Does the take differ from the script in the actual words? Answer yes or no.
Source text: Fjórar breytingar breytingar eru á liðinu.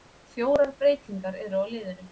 yes